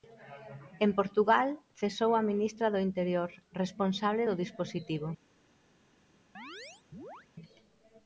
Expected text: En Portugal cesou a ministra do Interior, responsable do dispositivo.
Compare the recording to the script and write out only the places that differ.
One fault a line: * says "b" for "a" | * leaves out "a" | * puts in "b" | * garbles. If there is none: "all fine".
all fine